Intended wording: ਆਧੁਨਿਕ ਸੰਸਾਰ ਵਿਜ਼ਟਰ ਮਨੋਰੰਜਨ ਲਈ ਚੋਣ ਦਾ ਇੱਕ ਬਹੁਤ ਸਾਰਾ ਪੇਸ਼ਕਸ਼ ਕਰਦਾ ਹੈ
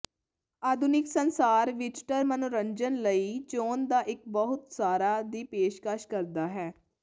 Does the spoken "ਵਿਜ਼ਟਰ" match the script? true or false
true